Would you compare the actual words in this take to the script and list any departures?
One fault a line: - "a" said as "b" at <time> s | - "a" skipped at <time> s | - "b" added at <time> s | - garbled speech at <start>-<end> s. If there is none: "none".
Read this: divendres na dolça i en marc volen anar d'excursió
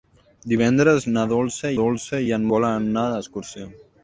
- "dolça" added at 1.8 s
- "marc" skipped at 2.5 s